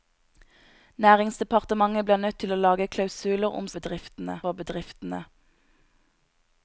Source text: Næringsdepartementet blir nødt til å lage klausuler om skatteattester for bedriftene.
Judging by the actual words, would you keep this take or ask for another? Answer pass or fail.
fail